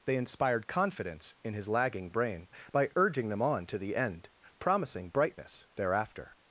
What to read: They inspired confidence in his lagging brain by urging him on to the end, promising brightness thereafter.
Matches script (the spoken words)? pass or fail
fail